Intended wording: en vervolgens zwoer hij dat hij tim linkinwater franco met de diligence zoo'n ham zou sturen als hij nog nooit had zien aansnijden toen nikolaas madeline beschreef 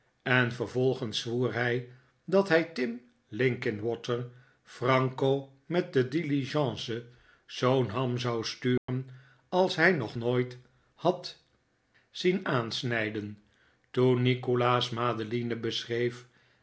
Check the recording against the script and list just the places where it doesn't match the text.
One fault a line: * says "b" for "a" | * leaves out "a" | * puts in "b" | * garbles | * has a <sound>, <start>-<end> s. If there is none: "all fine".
* has a dropout, 8.8-8.9 s